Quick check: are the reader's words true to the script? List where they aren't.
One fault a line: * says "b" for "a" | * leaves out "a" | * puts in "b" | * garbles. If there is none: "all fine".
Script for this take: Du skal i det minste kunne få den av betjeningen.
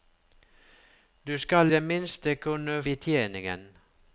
* leaves out "i"
* leaves out "få den av"